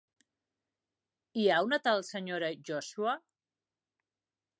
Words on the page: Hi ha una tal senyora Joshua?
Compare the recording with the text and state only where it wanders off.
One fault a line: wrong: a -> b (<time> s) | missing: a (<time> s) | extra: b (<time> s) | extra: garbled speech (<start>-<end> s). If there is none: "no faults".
no faults